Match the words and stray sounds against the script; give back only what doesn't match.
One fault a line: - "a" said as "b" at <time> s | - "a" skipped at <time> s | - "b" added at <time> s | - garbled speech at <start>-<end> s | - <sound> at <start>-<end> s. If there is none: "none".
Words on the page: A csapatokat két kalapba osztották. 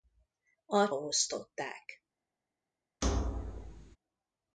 - "csapatokat két kalapba" skipped at 0.9 s
- thud at 3.0-4.0 s